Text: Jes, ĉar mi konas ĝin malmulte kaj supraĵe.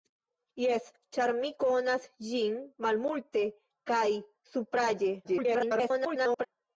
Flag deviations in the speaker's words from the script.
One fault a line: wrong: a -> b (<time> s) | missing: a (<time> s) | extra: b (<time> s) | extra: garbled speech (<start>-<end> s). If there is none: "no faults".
extra: garbled speech (5.2-6.5 s)